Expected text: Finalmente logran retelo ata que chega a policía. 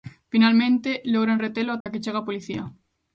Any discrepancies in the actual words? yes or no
no